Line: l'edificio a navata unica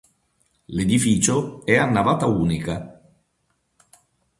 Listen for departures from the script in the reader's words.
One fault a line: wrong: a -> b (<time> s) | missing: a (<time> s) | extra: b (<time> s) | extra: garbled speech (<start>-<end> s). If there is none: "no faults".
extra: è (1.6 s)